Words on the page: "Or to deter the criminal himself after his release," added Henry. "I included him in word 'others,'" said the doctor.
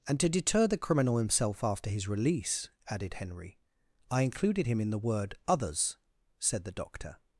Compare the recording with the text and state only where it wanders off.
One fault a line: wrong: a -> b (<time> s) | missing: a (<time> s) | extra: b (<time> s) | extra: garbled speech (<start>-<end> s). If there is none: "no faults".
wrong: Or -> And (0.1 s)
extra: the (4.9 s)